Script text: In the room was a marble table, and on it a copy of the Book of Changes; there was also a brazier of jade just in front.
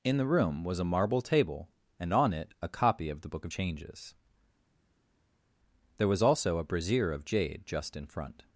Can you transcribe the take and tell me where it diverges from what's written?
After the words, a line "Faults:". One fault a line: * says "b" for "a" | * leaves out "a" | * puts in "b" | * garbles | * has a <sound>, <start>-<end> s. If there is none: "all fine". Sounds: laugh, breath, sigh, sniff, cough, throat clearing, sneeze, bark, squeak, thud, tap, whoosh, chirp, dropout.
In the room was a marble table, and on it a copy of the Book of Changes; there was also a brazier of jade just in front.
Faults:
all fine